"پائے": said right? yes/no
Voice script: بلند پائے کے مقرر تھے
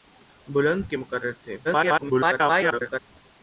no